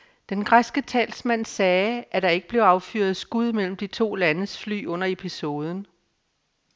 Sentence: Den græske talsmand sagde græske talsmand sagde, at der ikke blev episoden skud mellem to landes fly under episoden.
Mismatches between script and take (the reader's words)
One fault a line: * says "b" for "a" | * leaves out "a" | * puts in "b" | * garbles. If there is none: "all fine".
* leaves out "græske talsmand sagde"
* says "affyret" for "episoden"
* puts in "de"